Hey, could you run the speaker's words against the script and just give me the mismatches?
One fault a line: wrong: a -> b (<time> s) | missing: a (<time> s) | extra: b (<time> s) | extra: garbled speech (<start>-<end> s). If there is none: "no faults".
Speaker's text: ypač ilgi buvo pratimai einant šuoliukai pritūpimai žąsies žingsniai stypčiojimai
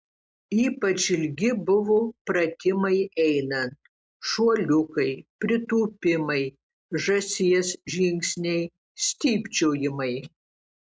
no faults